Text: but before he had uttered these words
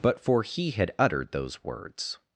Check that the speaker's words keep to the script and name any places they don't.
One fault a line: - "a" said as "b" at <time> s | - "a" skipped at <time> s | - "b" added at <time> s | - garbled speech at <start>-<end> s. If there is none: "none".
- "before" said as "for" at 0.2 s
- "these" said as "those" at 1.3 s